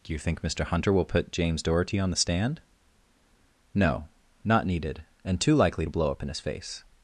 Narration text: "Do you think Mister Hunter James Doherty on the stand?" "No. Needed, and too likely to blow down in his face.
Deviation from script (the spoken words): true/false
true